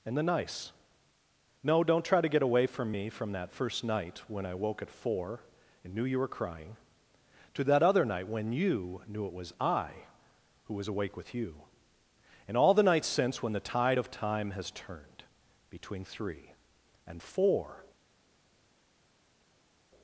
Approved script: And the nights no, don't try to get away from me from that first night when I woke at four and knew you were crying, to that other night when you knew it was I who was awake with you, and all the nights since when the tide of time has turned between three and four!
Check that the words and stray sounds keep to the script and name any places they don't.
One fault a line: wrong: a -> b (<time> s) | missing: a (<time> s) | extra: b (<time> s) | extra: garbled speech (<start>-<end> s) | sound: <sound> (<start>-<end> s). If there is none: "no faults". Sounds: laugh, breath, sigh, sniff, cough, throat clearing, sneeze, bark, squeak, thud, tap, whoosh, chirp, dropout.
wrong: nights -> nice (0.2 s)